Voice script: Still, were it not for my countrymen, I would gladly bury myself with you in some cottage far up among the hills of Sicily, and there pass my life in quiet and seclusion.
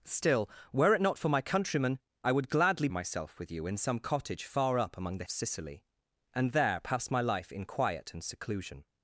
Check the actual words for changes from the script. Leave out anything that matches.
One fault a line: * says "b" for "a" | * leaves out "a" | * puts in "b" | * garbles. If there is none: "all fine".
* leaves out "bury"
* leaves out "hills"